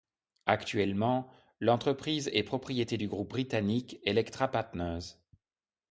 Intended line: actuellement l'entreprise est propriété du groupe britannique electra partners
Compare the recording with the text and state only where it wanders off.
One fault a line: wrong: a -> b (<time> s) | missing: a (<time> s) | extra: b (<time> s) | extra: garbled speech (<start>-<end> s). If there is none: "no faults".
no faults